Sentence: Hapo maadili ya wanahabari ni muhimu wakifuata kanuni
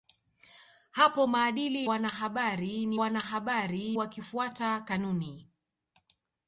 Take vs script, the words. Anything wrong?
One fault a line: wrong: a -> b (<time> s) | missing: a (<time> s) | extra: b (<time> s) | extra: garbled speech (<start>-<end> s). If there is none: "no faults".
missing: ya (1.9 s)
wrong: muhimu -> wanahabari (2.9 s)